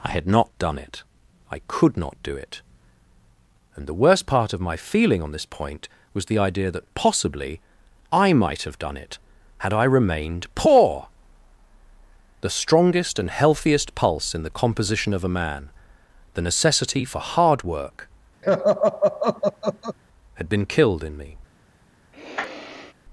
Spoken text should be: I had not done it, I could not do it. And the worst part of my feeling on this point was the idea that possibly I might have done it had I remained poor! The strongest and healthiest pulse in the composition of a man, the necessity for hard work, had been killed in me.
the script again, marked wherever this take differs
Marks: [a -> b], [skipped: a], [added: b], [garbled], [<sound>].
I had not done it, I could not do it. And the worst part of my feeling on this point was the idea that possibly I might have done it had I remained poor! The strongest and healthiest pulse in the composition of a man, the necessity for hard work, [laugh] had been killed in me. [sniff]